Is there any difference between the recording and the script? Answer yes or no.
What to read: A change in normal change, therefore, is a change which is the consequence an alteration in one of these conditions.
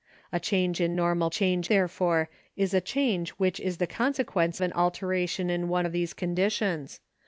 no